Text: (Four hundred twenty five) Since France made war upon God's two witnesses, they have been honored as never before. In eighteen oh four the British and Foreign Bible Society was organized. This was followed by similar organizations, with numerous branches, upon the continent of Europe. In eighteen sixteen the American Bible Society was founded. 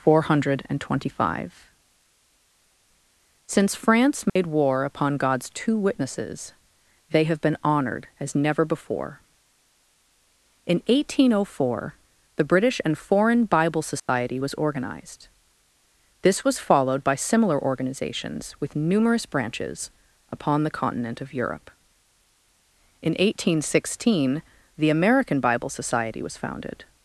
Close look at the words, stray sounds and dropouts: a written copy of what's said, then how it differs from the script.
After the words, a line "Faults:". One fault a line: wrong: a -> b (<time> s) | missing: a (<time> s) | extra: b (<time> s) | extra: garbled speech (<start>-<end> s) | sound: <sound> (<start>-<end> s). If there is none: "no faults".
(Four hundred twenty five) Since France made war upon God's two witnesses, they have been honored as never before. In eighteen oh four the British and Foreign Bible Society was organized. This was followed by similar organizations, with numerous branches, upon the continent of Europe. In eighteen sixteen the American Bible Society was founded.
Faults:
sound: dropout (4.3-4.4 s)
sound: dropout (14.0-14.1 s)